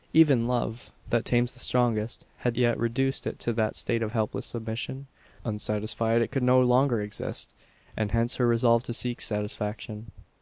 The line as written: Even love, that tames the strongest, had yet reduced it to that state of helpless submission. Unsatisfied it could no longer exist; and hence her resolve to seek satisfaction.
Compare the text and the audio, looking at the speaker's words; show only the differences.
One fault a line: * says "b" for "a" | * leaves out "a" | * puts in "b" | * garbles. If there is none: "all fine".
all fine